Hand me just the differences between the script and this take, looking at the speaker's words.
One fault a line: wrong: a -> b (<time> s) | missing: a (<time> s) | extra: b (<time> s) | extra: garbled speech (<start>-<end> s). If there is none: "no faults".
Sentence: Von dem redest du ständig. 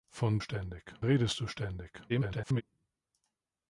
wrong: dem -> ständig (0.4 s)
extra: garbled speech (2.1-2.6 s)